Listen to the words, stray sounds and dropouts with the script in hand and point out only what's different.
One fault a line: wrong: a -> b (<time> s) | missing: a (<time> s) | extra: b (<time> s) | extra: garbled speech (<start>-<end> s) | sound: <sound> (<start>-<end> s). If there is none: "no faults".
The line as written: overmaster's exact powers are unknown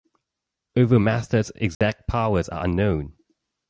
sound: dropout (1.7-1.8 s)